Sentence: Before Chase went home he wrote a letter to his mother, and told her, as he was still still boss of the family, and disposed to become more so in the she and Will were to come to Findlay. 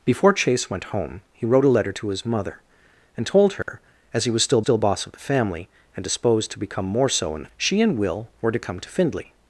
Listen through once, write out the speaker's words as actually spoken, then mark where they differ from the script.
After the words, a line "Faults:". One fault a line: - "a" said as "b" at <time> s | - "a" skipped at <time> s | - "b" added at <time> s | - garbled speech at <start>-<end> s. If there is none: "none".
Before Chase went home he wrote a letter to his mother, and told her, as he was still still boss of the family, and disposed to become more so in the she and Will were to come to Findlay.
Faults:
none